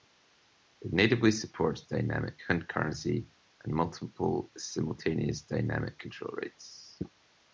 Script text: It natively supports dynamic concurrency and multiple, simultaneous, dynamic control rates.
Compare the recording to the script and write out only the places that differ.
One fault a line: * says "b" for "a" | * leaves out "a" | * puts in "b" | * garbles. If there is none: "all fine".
all fine